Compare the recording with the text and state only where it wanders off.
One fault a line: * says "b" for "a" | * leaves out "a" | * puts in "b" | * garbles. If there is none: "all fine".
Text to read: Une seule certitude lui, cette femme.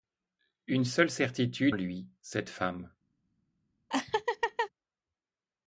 all fine